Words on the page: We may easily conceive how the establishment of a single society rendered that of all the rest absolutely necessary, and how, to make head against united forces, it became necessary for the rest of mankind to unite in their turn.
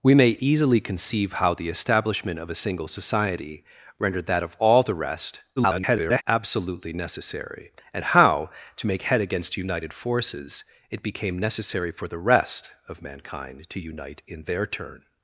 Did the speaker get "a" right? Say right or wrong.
right